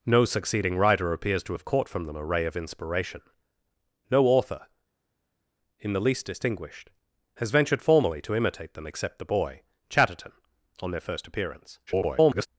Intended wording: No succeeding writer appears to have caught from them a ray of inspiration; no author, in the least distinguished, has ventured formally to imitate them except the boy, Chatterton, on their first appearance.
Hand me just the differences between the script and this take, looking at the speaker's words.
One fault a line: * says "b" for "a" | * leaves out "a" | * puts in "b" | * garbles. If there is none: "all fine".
* garbles